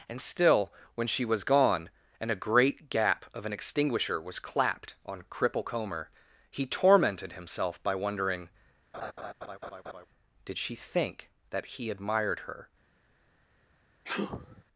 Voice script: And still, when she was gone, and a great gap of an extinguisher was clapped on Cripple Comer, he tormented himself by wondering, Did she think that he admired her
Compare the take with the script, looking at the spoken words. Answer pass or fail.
pass